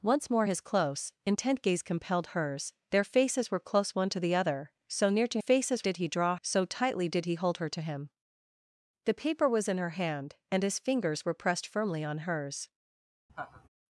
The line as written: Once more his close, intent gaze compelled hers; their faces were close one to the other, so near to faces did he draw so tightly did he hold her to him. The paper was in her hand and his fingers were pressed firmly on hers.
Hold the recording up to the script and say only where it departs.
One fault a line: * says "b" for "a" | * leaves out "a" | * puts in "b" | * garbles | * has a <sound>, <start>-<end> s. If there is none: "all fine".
* has a laugh, 13.3-13.7 s